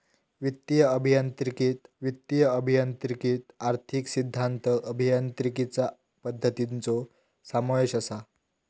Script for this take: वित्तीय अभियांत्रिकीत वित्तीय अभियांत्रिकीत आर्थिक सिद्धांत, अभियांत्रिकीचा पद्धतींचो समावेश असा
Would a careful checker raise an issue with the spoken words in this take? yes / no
no